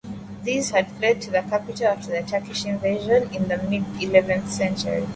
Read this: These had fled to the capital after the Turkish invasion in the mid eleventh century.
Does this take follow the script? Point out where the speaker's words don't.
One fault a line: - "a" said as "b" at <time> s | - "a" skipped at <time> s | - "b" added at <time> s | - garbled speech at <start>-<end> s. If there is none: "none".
none